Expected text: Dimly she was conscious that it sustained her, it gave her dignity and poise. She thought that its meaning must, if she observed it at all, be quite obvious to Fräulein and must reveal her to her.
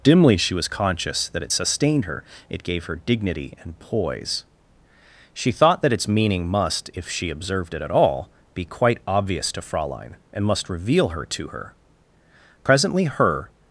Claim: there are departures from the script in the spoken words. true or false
true